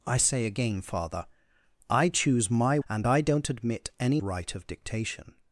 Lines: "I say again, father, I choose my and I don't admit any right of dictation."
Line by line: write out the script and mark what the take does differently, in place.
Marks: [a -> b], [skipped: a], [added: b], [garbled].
"I say again, father, I choose my and I don't admit any right of dictation."